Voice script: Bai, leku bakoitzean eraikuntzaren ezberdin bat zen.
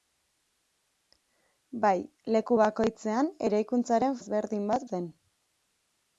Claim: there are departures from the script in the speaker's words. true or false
false